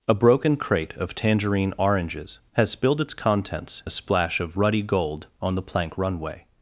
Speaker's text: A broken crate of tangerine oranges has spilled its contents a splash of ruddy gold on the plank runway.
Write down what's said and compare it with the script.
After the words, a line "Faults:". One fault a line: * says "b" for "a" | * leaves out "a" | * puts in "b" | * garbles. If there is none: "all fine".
A broken crate of tangerine oranges has spilled its contents a splash of ruddy gold on the plank runway.
Faults:
all fine